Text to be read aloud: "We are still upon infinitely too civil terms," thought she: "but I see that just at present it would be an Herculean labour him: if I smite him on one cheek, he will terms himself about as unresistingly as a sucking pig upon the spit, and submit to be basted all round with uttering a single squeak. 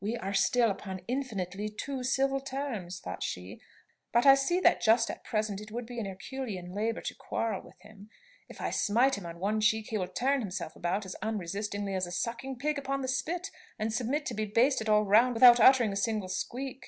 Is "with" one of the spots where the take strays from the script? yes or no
yes